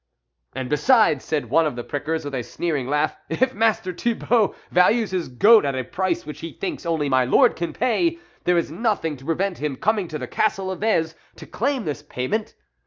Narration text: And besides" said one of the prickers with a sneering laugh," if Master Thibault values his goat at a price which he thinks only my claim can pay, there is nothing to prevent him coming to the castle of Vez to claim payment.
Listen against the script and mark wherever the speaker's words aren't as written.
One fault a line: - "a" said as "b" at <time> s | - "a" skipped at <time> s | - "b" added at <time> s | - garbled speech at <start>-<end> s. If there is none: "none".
- "claim" said as "lord" at 7.2 s
- "this" added at 11.9 s